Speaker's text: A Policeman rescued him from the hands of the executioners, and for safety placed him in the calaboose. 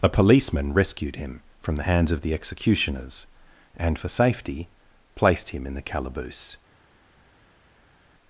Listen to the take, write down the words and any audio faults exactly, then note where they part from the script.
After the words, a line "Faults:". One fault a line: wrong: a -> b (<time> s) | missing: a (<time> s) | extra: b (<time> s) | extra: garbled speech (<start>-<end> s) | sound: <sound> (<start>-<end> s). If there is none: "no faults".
A Policeman rescued him from the hands of the executioners, and for safety placed him in the calaboose.
Faults:
no faults